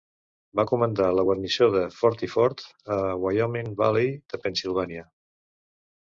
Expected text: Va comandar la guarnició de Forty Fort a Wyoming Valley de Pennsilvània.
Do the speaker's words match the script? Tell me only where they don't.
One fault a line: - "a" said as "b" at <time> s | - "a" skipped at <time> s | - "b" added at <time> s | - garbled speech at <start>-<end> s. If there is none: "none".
none